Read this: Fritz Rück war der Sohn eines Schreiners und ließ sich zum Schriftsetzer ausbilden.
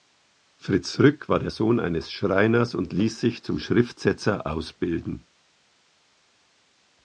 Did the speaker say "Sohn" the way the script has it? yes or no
yes